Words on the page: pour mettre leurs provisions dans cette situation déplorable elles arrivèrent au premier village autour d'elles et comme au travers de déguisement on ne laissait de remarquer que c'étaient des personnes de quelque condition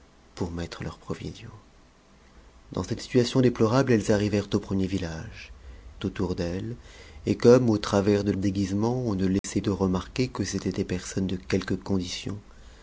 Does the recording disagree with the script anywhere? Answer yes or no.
no